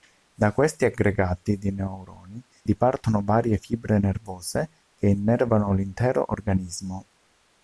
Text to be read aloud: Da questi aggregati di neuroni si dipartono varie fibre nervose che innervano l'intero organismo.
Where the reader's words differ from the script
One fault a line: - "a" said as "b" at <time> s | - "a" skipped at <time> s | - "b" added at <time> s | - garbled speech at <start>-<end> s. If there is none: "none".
- "si" skipped at 2.4 s